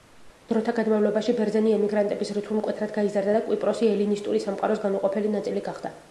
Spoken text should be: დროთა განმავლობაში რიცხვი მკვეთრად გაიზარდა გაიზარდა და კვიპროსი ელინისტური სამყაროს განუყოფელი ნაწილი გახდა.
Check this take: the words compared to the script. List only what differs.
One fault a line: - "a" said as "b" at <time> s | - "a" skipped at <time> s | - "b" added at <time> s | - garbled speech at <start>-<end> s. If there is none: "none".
- "ბერძენი ემიგრანტების" added at 1.4 s
- "გაიზარდა" skipped at 3.4 s